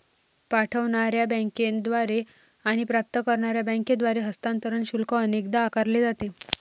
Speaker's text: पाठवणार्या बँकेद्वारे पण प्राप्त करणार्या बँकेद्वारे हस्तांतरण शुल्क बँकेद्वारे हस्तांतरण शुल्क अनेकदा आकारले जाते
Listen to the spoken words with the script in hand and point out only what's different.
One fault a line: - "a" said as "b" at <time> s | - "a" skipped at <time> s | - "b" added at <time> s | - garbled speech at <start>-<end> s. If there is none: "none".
- "पण" said as "आणि" at 2.6 s
- "बँकेद्वारे हस्तांतरण शुल्क" skipped at 5.1 s